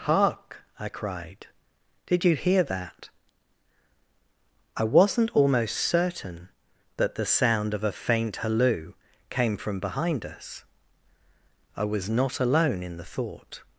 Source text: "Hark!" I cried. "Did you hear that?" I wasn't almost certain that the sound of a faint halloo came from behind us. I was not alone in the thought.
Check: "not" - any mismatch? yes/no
no